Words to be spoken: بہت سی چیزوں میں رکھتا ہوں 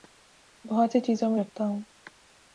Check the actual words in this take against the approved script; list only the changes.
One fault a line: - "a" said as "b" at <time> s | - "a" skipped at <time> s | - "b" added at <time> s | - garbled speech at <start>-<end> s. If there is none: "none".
none